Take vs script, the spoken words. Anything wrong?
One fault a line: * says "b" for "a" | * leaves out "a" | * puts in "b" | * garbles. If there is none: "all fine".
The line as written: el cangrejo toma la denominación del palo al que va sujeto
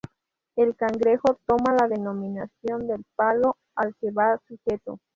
all fine